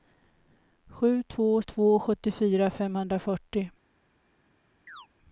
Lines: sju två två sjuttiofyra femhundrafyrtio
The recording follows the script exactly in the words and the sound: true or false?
false